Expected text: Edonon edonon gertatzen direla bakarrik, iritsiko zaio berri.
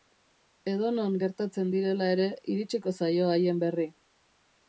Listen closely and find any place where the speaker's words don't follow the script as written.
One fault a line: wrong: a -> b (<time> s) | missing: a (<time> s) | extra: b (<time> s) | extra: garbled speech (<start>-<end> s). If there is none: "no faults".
missing: edonon (1.2 s)
wrong: bakarrik -> ere (2.2 s)
extra: haien (3.3 s)